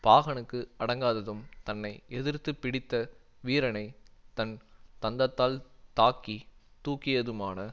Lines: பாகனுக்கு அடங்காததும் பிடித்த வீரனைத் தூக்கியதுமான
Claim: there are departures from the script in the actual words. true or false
true